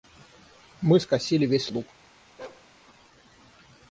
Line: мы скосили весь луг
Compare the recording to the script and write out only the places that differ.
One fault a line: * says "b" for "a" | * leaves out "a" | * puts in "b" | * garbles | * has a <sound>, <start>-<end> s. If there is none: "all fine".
* has a bark, 2.4-2.7 s